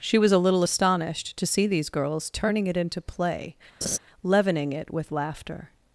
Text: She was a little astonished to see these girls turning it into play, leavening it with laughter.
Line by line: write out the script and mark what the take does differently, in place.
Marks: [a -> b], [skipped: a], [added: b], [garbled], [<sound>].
She was a little astonished to see these girls turning it into play, [laugh] leavening it with laughter.